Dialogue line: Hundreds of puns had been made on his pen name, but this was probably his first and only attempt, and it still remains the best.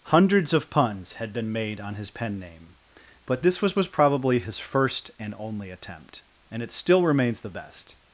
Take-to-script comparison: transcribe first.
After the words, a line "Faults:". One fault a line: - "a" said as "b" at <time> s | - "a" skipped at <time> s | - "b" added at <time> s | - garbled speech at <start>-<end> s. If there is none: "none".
Hundreds of puns had been made on his pen name, but this was was probably his first and only attempt, and it still remains the best.
Faults:
- "was" added at 3.8 s